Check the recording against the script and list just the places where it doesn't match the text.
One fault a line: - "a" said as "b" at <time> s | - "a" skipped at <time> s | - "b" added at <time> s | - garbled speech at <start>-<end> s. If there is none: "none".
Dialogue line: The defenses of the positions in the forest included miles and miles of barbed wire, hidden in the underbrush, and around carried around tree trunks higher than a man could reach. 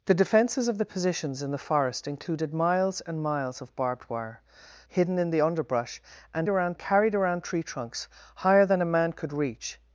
none